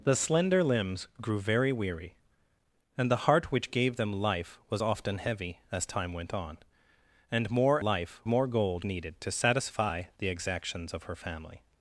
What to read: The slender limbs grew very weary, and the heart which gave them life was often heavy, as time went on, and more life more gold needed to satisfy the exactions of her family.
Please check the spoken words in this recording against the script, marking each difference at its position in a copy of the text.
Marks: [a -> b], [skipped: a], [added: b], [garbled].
The slender limbs grew very weary, and the heart which gave them life was often heavy, as time went on, and more life more gold needed to satisfy the exactions of her family.